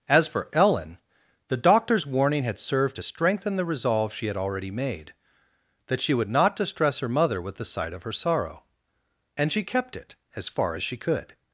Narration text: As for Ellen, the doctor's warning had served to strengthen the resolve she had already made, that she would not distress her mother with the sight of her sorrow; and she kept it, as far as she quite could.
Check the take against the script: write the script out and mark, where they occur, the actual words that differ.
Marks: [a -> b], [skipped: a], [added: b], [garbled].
As for Ellen, the doctor's warning had served to strengthen the resolve she had already made, that she would not distress her mother with the sight of her sorrow; and she kept it, as far as she [skipped: quite] could.